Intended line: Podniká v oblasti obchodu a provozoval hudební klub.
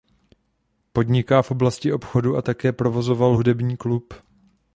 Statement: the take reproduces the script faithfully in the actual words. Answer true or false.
false